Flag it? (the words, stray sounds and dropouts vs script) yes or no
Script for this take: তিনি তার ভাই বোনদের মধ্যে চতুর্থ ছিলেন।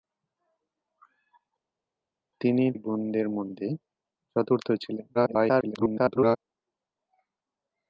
yes